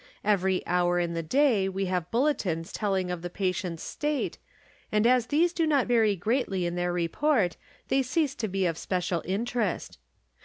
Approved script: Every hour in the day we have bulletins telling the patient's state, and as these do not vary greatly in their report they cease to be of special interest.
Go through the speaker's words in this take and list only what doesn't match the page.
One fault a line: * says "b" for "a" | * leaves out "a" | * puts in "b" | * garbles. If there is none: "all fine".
* puts in "of"